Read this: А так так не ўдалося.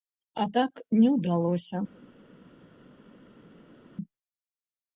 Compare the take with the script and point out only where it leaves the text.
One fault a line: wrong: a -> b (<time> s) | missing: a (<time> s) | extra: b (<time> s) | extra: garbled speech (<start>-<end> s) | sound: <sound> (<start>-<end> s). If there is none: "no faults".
missing: так (0.7 s)